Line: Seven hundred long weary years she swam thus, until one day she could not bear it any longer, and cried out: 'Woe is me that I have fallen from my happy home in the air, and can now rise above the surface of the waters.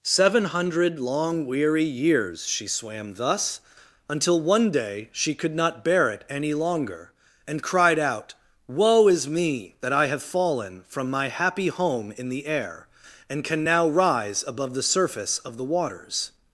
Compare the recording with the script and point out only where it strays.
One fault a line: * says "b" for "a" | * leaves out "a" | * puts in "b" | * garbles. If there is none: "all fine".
all fine